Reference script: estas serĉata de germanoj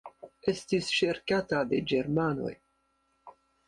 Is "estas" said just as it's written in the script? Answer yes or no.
no